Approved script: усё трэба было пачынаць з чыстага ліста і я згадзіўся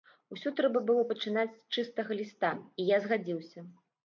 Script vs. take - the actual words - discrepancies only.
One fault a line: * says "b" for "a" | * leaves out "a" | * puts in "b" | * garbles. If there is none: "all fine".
all fine